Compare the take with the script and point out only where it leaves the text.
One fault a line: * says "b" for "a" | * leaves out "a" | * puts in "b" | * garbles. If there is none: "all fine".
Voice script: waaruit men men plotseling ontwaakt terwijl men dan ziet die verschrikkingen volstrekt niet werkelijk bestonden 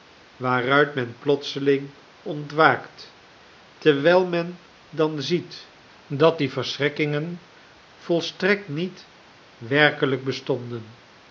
* leaves out "men"
* puts in "dat"